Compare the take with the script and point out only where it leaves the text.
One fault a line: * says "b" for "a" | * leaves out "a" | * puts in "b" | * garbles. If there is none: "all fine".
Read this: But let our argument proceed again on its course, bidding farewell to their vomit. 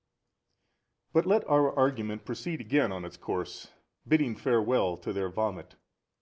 all fine